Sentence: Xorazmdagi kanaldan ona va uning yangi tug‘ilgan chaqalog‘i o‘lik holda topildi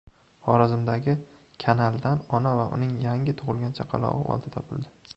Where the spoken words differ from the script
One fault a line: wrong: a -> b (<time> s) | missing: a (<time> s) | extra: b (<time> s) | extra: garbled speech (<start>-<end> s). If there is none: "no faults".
missing: o‘lik (4.2 s)